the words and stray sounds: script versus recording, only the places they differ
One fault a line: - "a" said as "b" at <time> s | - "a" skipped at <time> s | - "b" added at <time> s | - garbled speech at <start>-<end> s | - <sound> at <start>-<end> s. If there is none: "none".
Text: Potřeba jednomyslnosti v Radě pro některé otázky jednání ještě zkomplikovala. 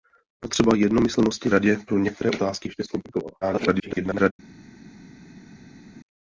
- "v" skipped at 1.5 s
- "jednání" skipped at 2.7 s
- garbled speech at 3.4-4.3 s